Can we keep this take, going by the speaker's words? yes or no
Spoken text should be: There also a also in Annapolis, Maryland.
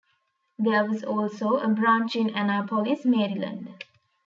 no